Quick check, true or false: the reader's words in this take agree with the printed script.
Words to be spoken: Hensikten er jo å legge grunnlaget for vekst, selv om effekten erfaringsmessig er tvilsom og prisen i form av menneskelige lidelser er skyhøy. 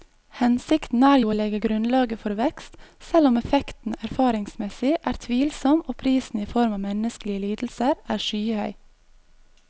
true